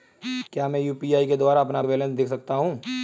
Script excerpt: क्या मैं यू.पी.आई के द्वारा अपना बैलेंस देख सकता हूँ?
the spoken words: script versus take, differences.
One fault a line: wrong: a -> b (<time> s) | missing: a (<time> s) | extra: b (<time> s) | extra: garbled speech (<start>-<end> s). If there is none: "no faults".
no faults